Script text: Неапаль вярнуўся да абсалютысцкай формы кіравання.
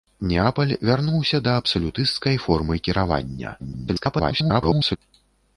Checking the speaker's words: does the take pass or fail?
fail